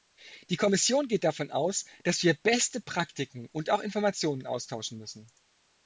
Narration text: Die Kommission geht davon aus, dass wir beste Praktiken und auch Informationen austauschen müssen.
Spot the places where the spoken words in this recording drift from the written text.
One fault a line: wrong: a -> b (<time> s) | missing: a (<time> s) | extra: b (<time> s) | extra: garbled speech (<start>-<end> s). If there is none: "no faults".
no faults